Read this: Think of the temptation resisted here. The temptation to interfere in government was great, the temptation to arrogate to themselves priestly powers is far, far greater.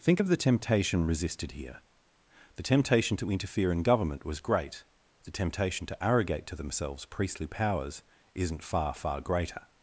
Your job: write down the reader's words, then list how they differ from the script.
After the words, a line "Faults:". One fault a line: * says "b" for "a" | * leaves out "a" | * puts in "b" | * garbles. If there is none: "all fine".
Think of the temptation resisted here. The temptation to interfere in government was great, the temptation to arrogate to themselves priestly powers isn't far, far greater.
Faults:
* says "isn't" for "is"